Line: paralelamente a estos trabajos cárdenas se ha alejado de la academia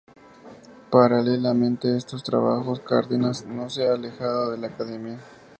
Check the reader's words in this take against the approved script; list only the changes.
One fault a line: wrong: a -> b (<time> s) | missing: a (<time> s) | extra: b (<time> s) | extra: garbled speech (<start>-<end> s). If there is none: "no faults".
extra: no (3.5 s)